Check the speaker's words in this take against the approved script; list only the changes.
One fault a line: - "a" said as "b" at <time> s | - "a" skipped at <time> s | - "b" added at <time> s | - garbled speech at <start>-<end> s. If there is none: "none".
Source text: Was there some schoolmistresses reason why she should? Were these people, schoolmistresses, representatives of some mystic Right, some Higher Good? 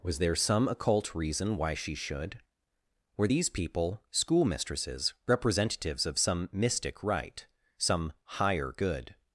- "schoolmistresses" said as "occult" at 0.7 s